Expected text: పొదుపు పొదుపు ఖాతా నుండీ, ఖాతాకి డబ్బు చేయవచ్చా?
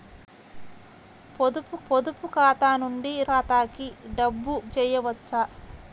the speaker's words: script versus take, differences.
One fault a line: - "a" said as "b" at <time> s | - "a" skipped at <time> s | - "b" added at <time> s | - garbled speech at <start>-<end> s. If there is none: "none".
none